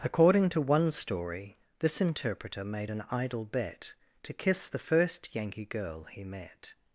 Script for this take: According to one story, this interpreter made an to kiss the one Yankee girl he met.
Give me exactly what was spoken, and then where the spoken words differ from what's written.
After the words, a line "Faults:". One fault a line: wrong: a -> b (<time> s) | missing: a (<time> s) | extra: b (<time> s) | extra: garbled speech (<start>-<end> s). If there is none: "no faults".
According to one story, this interpreter made an idle bet to kiss the first Yankee girl he met.
Faults:
extra: idle bet (3.1 s)
wrong: one -> first (4.8 s)